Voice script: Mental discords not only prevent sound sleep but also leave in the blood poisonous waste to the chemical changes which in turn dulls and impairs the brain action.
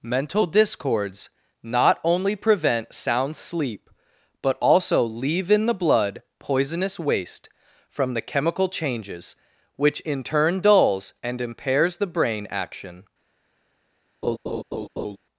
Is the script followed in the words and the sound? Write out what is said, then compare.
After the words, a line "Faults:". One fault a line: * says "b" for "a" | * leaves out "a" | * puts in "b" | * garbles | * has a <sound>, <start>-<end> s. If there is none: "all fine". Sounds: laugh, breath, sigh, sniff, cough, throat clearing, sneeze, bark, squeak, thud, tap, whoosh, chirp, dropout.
Mental discords not only prevent sound sleep but also leave in the blood poisonous waste from the chemical changes which in turn dulls and impairs the brain action.
Faults:
* says "from" for "to"
* has a laugh, 14.2-15.2 s